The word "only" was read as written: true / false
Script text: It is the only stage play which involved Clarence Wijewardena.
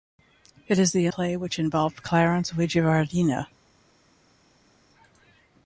false